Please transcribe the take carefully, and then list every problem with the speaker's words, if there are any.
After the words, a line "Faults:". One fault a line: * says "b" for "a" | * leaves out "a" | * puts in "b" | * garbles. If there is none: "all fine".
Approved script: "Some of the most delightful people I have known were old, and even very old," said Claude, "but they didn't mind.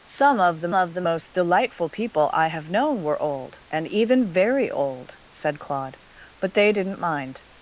"Some of the of the most delightful people I have known were old, and even very old," said Claude, "but they didn't mind.
Faults:
* puts in "of the"